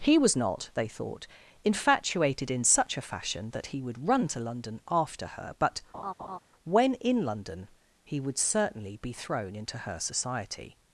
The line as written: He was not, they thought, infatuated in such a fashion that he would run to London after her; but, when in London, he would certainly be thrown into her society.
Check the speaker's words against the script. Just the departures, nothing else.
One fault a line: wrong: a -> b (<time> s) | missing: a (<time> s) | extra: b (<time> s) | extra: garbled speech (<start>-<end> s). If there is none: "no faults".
no faults